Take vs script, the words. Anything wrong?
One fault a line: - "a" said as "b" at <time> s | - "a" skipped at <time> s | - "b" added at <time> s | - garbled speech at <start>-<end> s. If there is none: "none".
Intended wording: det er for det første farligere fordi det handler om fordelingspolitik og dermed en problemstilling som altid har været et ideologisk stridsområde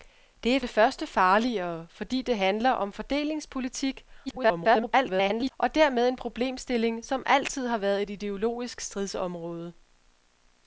- "for" skipped at 0.6 s
- garbled speech at 4.3-5.5 s